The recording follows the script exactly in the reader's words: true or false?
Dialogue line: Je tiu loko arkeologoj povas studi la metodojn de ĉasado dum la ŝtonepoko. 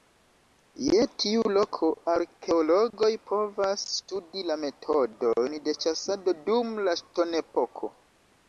true